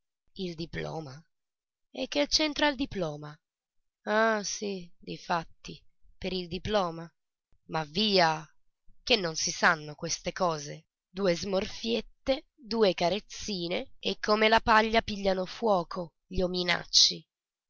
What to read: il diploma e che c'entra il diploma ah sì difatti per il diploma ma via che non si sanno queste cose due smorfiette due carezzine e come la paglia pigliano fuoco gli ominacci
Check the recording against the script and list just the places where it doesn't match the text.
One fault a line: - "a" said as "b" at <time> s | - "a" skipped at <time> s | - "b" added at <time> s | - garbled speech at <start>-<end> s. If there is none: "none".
none